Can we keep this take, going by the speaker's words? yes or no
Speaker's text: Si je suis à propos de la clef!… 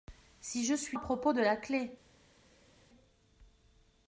yes